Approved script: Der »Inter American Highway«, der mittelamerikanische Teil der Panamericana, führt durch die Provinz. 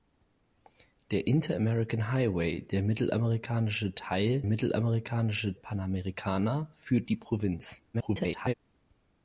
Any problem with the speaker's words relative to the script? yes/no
yes